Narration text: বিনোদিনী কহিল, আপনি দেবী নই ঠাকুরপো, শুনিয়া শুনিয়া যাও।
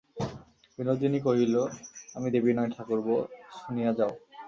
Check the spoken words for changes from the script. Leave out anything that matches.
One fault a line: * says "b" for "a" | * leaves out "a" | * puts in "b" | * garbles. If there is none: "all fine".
* says "আমি" for "আপনি"
* leaves out "শুনিয়া"